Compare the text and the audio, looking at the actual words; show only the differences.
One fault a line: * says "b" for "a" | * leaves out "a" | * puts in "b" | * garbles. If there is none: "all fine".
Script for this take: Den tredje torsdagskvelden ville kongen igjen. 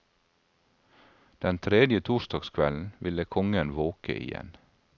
* puts in "våke"